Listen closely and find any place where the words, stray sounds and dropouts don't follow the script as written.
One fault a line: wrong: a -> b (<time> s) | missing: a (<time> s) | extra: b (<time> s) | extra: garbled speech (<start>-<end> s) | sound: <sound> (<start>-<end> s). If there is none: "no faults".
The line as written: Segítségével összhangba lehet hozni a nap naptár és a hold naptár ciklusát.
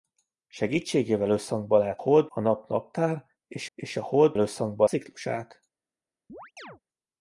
wrong: hozni -> hold (2.0 s)
extra: és (3.7 s)
wrong: naptár -> összhangba (4.4 s)
sound: chirp (6.3-6.8 s)